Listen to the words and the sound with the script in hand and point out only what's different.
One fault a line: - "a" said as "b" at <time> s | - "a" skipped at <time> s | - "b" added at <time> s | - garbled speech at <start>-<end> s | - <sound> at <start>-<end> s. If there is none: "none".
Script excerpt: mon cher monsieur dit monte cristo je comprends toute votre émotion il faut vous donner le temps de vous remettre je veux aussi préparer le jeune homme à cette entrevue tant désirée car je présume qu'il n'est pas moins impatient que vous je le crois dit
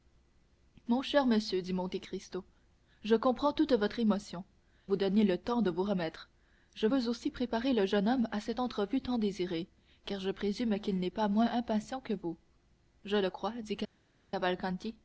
- "il faut" skipped at 4.4 s